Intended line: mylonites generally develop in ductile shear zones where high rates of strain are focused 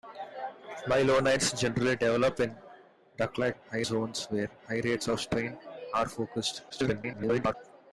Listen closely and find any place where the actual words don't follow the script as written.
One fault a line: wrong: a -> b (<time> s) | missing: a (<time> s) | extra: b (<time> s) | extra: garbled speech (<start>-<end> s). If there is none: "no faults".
wrong: shear -> high (3.5 s)
extra: garbled speech (6.7-7.5 s)